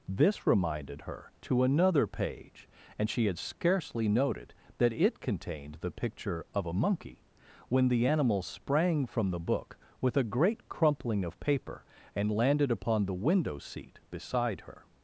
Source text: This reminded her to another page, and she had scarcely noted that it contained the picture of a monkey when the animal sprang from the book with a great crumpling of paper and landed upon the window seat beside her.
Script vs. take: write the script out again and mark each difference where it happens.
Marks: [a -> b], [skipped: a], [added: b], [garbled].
This reminded her to another page, and she had scarcely noted that it contained the picture of a monkey when the animal sprang from the book with a great crumpling of paper and landed upon the window seat beside her.